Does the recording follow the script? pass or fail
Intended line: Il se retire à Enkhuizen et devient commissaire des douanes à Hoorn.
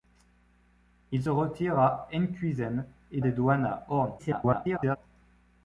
fail